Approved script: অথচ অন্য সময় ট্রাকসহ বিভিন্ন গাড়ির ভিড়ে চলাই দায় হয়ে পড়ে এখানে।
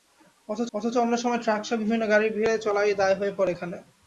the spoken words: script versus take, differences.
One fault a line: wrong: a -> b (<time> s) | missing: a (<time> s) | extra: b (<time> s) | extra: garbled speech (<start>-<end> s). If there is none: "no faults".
extra: অথচ (0.7 s)